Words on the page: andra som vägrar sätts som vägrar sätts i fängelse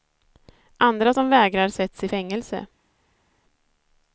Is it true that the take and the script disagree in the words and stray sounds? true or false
true